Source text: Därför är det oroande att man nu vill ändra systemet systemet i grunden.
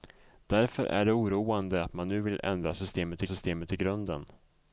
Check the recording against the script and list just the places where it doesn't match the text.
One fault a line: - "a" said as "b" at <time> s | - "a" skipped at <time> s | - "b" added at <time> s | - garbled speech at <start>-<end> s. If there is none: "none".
none